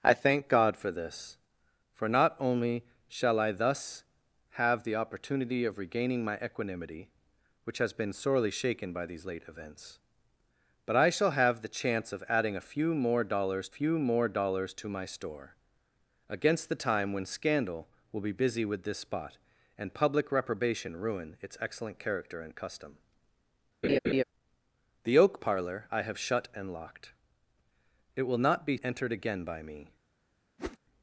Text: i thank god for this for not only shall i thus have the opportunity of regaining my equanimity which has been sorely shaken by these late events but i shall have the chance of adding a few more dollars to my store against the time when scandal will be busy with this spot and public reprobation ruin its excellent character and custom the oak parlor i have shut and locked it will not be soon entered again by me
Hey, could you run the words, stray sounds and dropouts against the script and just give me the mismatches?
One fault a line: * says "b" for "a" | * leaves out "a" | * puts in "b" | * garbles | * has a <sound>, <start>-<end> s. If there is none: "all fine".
* puts in "few more dollars"
* has a laugh, 23.8-24.2 s
* leaves out "soon"
* has a whoosh, 30.6-30.8 s